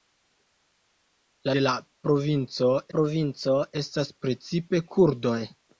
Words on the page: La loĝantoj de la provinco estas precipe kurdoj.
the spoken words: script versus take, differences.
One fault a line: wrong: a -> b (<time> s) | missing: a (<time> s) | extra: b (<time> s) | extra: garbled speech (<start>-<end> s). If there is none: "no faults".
missing: loĝantoj (1.5 s)
extra: provinco (3.0 s)